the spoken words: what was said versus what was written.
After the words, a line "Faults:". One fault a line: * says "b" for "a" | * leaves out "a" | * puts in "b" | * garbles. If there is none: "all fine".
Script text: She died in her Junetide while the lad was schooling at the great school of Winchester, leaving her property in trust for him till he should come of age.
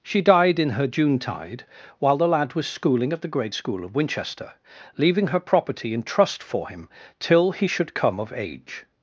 She died in her Junetide while the lad was schooling at the great school of Winchester, leaving her property in trust for him till he should come of age.
Faults:
all fine